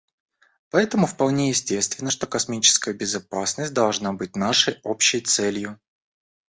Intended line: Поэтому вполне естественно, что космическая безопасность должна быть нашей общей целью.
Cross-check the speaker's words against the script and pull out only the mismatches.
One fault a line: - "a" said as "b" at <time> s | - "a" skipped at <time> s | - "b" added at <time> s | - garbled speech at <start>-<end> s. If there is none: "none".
none